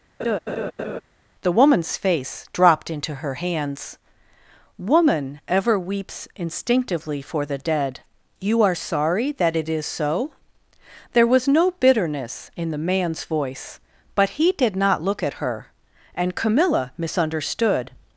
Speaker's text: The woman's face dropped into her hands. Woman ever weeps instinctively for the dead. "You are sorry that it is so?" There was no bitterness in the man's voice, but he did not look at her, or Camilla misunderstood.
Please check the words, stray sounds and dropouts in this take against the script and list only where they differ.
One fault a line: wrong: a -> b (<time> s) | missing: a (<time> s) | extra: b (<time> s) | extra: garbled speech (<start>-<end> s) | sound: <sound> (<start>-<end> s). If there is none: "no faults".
sound: laugh (0.2-1.0 s)
wrong: or -> and (16.2 s)